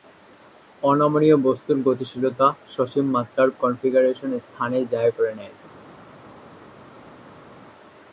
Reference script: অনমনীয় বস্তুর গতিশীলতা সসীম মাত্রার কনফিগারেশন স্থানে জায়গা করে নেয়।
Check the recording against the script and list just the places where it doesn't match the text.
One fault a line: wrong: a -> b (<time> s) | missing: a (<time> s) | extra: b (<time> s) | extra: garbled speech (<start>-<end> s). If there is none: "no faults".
no faults